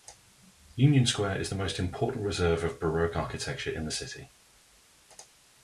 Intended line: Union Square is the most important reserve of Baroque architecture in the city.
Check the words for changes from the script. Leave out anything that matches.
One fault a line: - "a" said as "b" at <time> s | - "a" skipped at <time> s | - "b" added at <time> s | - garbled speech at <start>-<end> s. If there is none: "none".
none